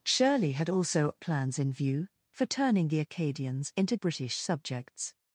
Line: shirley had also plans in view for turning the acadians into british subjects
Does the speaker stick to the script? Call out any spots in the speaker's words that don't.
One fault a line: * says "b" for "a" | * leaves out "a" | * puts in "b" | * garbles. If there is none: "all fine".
all fine